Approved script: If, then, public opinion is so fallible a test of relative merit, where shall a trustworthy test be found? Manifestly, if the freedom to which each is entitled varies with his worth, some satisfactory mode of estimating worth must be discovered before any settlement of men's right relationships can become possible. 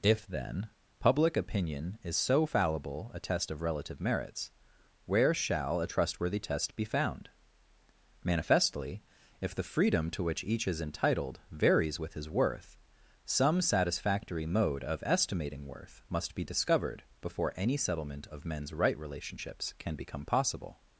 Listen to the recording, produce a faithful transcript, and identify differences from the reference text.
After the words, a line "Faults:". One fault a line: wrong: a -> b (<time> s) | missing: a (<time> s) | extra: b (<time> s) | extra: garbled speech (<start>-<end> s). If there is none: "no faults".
If, then, public opinion is so fallible a test of relative merits, where shall a trustworthy test be found? Manifestly, if the freedom to which each is entitled varies with his worth, some satisfactory mode of estimating worth must be discovered before any settlement of men's right relationships can become possible.
Faults:
wrong: merit -> merits (4.0 s)